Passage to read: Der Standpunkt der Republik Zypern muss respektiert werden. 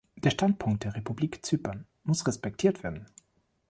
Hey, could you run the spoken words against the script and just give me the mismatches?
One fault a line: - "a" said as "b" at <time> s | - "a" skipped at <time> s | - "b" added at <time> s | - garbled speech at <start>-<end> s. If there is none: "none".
none